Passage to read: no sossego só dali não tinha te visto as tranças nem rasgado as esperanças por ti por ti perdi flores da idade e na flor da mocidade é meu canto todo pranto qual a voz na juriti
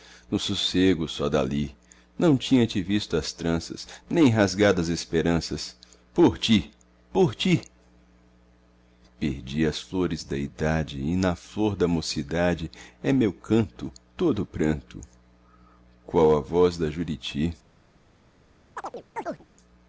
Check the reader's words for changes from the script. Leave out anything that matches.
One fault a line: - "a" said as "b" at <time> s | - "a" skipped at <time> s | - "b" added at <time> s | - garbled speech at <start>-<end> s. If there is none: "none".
- "as" added at 9.7 s
- "na" said as "da" at 16.8 s